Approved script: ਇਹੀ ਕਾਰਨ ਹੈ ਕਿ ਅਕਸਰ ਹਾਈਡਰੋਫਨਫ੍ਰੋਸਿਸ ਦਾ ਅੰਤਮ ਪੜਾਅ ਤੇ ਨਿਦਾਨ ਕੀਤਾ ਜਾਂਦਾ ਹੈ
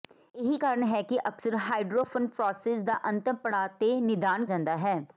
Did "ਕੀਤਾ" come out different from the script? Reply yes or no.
yes